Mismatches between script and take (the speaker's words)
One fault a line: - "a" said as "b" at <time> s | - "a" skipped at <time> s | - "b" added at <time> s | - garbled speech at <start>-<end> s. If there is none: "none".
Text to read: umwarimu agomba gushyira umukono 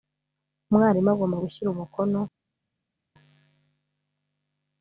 none